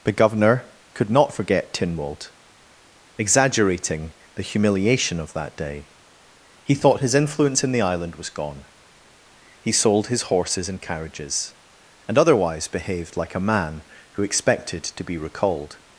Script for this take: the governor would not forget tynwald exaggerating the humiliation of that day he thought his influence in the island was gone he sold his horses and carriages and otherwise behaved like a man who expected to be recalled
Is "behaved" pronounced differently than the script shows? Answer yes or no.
no